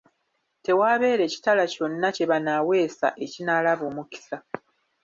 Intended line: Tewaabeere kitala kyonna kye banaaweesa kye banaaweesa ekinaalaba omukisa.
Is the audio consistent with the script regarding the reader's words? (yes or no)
no